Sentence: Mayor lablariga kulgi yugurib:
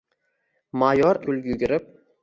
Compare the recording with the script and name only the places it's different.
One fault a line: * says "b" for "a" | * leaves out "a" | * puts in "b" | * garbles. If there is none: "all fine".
* leaves out "lablariga"